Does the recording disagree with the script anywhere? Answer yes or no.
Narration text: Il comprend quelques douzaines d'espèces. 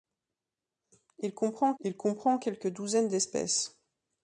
yes